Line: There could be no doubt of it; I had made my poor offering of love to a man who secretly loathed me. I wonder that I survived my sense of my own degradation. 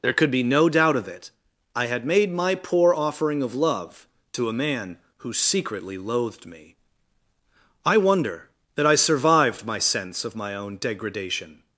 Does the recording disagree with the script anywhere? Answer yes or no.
no